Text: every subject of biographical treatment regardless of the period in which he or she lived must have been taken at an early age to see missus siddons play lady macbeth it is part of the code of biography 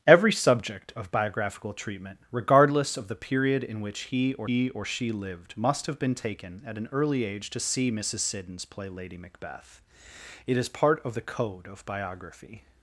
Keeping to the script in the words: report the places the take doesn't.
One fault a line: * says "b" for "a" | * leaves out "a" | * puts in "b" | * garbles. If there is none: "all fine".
* puts in "he or"